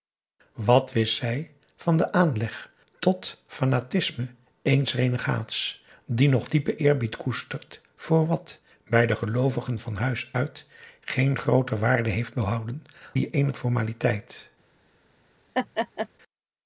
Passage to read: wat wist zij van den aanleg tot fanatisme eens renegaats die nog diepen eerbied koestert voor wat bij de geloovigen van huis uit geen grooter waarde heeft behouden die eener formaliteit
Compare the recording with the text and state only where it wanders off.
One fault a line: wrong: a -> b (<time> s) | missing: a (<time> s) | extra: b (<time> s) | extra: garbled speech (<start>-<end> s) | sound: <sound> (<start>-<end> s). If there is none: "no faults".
sound: laugh (15.5-16.1 s)